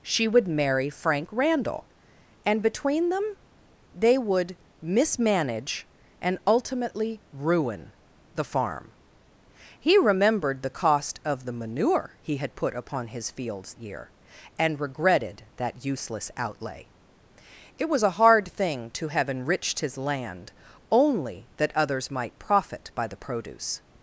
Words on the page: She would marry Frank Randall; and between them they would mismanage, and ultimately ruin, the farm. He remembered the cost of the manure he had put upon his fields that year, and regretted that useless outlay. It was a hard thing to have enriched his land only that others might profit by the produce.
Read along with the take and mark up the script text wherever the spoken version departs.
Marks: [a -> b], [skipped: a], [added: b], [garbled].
She would marry Frank Randall; and between them they would mismanage, and ultimately ruin, the farm. He remembered the cost of the manure he had put upon his fields [skipped: that] year, and regretted that useless outlay. It was a hard thing to have enriched his land only that others might profit by the produce.